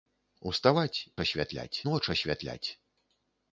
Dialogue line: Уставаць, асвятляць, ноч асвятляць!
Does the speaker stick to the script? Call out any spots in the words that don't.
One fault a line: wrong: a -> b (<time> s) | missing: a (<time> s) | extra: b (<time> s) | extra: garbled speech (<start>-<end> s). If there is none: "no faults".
no faults